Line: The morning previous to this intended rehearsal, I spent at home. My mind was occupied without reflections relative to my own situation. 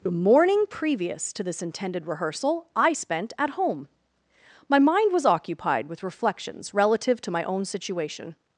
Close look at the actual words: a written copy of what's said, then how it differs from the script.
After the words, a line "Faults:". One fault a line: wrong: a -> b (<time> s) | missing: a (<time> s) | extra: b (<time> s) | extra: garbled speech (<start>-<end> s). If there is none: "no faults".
The morning previous to this intended rehearsal, I spent at home. My mind was occupied with reflections relative to my own situation.
Faults:
wrong: without -> with (5.9 s)